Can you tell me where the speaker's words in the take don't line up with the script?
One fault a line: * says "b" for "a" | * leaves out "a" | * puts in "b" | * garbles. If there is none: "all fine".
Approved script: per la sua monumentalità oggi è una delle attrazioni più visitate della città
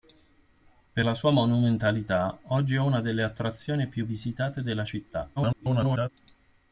* garbles